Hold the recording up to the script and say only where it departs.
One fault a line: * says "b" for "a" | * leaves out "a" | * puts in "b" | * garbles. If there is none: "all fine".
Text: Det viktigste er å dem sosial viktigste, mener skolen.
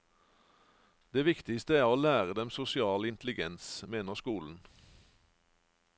* puts in "lære"
* says "intelligens" for "viktigste"